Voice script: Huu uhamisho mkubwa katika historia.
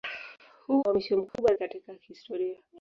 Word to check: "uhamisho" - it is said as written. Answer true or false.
true